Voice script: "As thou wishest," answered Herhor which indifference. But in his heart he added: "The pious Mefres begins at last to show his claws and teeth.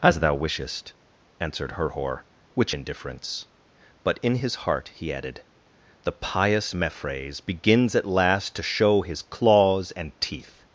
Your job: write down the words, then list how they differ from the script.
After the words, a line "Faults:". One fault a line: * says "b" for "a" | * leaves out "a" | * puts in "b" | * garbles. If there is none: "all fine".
"As thou wishest," answered Herhor which indifference. But in his heart he added: "The pious Mefres begins at last to show his claws and teeth.
Faults:
all fine